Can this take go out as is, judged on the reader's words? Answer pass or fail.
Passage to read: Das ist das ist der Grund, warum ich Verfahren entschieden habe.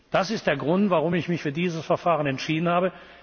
fail